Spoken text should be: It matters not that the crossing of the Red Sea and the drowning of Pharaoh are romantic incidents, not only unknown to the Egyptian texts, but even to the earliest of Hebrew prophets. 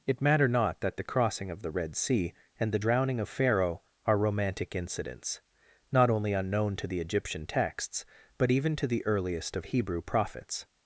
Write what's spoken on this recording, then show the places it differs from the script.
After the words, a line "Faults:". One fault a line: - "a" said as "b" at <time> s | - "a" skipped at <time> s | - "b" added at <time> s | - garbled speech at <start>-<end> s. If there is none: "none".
It matter not that the crossing of the Red Sea and the drowning of Pharaoh are romantic incidents, not only unknown to the Egyptian texts, but even to the earliest of Hebrew prophets.
Faults:
- "matters" said as "matter" at 0.2 s